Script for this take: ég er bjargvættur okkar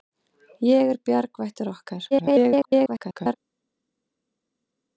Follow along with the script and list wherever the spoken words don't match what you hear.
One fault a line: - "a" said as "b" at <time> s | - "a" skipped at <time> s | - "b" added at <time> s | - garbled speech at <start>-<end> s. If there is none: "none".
- garbled speech at 2.1-3.3 s